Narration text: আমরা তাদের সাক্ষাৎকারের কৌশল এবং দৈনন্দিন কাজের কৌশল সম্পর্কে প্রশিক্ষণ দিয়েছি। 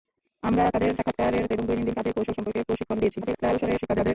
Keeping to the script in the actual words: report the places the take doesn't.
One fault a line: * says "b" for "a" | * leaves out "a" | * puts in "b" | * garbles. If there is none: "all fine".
* leaves out "কৌশল"
* garbles